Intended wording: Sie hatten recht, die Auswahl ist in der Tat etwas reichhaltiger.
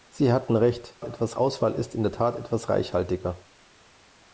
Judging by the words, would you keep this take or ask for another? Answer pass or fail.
fail